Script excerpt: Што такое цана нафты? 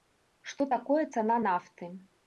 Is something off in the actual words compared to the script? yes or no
no